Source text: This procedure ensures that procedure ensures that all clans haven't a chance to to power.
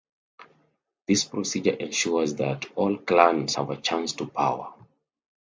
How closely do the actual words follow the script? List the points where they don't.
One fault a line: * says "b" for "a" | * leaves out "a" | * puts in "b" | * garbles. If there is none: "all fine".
* leaves out "procedure ensures that"
* says "have" for "haven't"
* leaves out "to"